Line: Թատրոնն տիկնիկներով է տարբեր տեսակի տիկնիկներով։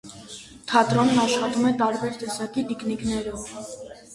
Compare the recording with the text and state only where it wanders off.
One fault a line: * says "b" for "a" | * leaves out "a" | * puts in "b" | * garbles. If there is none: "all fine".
* says "աշխատում" for "տիկնիկներով"